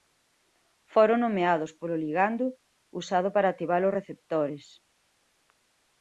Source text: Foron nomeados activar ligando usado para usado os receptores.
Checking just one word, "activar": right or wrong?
wrong